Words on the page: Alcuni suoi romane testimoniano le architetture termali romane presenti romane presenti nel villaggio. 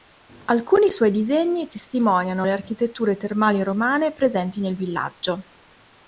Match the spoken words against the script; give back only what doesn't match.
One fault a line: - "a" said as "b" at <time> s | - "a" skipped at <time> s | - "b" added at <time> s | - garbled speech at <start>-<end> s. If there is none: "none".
- "romane" said as "disegni" at 1.1 s
- "romane presenti" skipped at 4.6 s